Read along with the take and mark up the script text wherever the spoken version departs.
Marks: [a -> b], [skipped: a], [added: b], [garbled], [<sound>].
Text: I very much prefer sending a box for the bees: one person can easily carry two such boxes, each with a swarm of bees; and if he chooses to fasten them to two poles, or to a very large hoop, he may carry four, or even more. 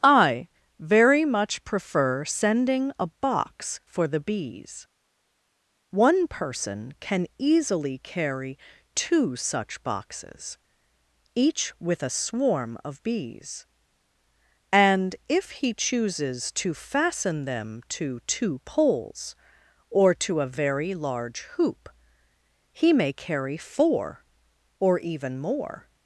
I very much prefer sending a box for the bees: one person can easily carry two such boxes, each with a swarm of bees; and if he chooses to fasten them to two poles, or to a very large hoop, he may carry four, or even more.